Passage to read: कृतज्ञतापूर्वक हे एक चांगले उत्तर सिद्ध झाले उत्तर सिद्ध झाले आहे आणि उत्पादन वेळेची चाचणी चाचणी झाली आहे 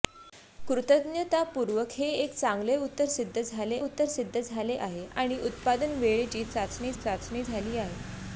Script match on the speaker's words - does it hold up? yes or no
yes